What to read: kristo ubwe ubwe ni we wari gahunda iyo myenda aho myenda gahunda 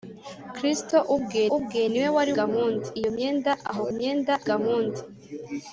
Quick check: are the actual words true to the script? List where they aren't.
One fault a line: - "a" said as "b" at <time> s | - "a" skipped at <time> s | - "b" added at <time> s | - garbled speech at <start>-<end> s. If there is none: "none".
none